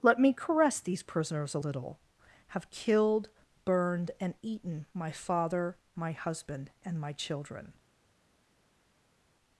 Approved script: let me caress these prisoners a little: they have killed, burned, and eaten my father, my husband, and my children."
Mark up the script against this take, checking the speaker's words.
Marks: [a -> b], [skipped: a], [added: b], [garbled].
let me caress these prisoners a little: [skipped: they] have killed, burned, and eaten my father, my husband, and my children."